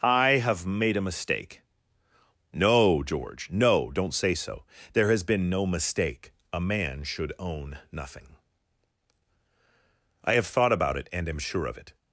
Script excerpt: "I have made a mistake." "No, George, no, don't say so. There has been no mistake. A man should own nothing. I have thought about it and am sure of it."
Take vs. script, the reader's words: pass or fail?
pass